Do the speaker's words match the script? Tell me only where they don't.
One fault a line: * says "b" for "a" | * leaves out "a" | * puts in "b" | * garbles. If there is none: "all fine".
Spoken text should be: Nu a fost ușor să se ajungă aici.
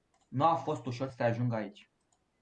all fine